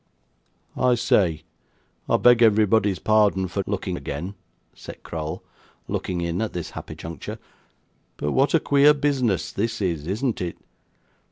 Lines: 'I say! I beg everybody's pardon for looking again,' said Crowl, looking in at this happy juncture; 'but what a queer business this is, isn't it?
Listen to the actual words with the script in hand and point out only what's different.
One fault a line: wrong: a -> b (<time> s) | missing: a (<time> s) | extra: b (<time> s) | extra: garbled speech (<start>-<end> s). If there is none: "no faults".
no faults